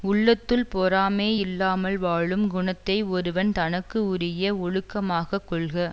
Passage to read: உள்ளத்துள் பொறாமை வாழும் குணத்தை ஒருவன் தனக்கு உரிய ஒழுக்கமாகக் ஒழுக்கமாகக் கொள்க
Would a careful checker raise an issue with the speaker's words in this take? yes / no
yes